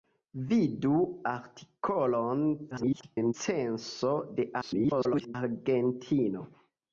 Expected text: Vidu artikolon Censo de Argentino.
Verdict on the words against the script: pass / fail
fail